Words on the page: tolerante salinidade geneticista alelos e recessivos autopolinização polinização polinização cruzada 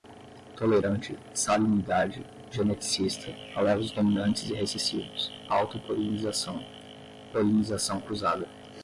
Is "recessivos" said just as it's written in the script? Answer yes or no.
yes